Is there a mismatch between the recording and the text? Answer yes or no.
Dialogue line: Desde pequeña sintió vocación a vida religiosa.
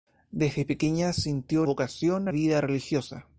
no